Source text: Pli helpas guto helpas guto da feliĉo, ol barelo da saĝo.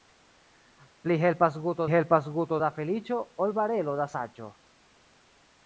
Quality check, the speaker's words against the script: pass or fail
pass